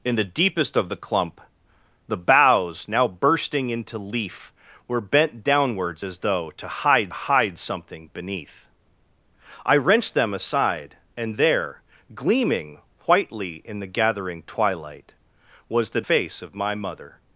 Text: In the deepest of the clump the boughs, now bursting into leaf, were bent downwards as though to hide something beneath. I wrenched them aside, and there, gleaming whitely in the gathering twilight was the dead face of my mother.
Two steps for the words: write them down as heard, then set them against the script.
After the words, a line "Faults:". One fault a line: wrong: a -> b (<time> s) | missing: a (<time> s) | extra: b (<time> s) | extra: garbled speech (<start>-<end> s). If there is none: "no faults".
In the deepest of the clump the boughs, now bursting into leaf, were bent downwards as though to hide hide something beneath. I wrenched them aside, and there, gleaming whitely in the gathering twilight was the face of my mother.
Faults:
extra: hide (7.1 s)
missing: dead (16.0 s)